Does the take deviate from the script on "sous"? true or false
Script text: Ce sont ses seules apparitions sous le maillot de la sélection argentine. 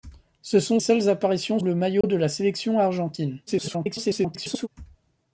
true